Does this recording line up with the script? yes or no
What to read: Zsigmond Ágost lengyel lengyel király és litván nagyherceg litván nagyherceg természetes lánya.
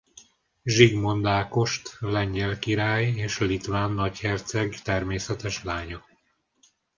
no